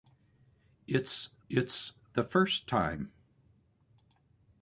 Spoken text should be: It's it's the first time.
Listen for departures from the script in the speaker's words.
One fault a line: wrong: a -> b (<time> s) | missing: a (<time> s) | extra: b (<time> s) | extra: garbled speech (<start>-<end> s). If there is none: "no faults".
no faults